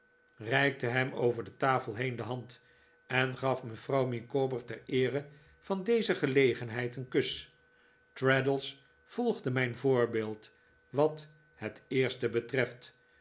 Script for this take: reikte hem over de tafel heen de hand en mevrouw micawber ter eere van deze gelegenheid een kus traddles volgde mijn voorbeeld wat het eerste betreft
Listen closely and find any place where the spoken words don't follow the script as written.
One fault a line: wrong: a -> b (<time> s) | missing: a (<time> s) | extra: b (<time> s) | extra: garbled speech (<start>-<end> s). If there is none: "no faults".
extra: gaf (3.4 s)